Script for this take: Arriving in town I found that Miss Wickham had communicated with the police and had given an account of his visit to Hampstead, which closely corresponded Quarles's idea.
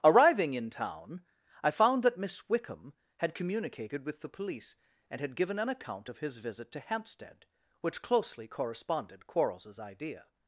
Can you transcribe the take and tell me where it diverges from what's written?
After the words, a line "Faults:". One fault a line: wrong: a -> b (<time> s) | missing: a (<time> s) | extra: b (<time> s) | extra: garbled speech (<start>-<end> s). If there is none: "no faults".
Arriving in town I found that Miss Wickham had communicated with the police and had given an account of his visit to Hampstead, which closely corresponded Quarles's idea.
Faults:
no faults